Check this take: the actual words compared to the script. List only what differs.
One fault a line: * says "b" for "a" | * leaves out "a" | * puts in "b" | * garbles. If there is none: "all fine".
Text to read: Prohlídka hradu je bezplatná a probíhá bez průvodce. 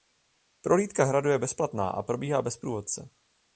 all fine